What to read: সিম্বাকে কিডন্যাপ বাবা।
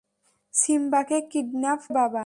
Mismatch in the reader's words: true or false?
false